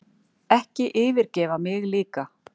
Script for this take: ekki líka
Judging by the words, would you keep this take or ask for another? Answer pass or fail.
fail